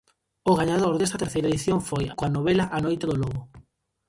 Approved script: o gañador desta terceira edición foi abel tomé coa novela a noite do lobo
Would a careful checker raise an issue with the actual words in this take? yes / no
yes